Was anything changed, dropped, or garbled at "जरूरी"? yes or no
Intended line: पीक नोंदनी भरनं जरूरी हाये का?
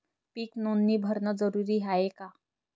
no